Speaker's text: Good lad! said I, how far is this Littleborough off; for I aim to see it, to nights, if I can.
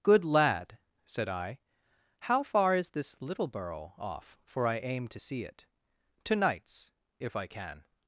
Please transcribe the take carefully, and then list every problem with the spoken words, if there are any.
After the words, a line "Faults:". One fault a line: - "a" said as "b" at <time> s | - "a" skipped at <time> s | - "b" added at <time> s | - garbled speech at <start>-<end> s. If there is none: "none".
Good lad! said I, how far is this Littleborough off; for I aim to see it, to nights, if I can.
Faults:
none